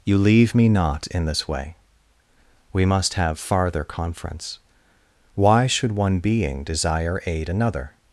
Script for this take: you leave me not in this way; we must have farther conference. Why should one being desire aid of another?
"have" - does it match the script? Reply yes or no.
yes